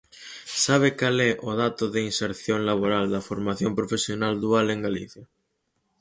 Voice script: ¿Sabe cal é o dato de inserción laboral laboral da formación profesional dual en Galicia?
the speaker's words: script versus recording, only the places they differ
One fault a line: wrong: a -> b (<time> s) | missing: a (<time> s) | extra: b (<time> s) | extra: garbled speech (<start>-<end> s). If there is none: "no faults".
missing: laboral (3.0 s)